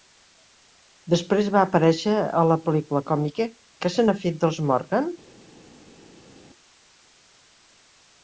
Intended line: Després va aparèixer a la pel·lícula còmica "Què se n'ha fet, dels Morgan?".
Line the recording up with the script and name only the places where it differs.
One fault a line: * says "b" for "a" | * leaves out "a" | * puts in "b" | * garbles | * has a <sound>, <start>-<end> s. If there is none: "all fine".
all fine